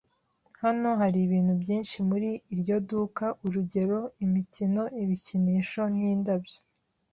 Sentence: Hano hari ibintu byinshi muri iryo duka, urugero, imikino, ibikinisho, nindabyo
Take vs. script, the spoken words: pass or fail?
pass